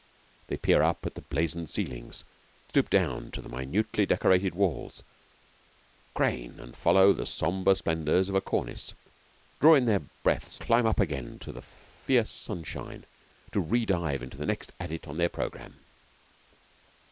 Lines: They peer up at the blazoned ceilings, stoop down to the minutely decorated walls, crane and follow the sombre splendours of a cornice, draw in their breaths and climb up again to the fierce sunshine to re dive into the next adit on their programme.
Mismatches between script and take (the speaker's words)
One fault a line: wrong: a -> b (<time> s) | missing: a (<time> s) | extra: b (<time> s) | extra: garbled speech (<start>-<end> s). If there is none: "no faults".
missing: and (10.6 s)